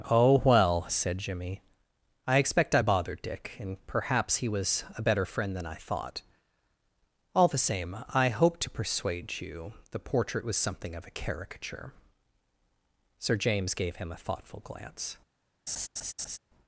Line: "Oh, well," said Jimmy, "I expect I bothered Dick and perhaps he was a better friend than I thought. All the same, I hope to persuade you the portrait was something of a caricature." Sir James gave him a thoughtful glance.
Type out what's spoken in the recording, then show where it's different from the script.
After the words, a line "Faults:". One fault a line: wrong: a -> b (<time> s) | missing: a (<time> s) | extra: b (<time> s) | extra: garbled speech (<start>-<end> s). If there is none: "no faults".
"Oh, well," said Jimmy, "I expect I bothered Dick and perhaps he was a better friend than I thought. All the same, I hope to persuade you the portrait was something of a caricature." Sir James gave him a thoughtful glance.
Faults:
no faults